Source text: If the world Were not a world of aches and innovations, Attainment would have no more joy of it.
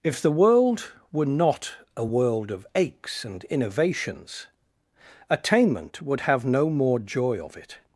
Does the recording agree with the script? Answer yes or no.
yes